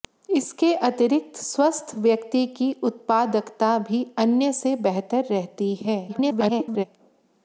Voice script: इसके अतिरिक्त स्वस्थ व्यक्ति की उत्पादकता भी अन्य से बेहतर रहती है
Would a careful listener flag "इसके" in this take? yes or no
no